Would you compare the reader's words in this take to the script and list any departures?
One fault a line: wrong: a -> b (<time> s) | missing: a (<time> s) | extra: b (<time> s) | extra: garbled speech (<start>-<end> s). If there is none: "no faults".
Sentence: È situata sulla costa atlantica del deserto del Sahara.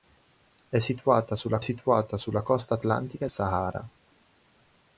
extra: situata sulla (1.6 s)
missing: del deserto del (3.3 s)